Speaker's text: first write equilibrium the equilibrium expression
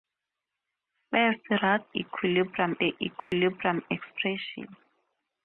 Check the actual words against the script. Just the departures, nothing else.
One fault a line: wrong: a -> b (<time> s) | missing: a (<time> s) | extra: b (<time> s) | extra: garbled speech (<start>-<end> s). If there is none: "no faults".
no faults